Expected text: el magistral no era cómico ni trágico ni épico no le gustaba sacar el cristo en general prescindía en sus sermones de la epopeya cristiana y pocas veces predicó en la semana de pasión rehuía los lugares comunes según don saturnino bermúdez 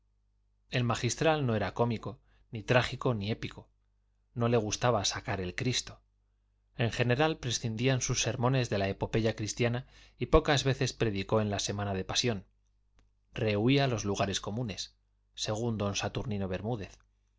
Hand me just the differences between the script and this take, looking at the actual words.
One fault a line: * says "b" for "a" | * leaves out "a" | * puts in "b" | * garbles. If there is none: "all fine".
all fine